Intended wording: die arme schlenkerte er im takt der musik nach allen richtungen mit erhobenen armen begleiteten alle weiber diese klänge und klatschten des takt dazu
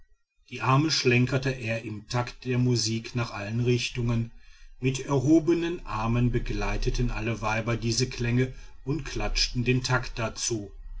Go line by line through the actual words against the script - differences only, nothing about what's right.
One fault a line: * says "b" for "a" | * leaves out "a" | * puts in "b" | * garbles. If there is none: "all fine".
* says "den" for "des"